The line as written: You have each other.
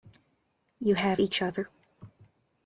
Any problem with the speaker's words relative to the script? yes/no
no